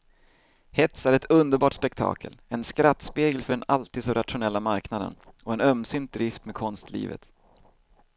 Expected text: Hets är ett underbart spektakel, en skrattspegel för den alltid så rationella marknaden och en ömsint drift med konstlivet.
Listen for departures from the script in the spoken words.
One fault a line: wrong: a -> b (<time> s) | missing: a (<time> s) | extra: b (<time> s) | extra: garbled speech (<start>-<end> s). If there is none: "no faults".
no faults